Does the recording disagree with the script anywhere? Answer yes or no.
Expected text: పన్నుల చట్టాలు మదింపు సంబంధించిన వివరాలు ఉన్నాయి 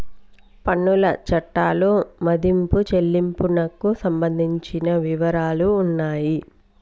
yes